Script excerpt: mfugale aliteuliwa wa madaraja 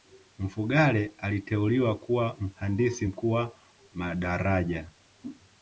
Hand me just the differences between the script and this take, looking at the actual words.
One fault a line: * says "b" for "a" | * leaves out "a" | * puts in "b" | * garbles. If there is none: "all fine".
* puts in "kuwa mhandisi mkuu"